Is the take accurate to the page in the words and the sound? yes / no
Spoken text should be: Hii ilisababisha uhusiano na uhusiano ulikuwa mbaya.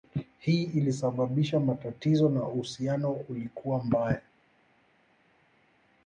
no